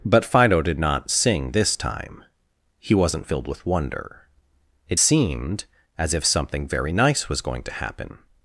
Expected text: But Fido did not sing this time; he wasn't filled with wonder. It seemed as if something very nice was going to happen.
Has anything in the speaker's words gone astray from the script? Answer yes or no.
no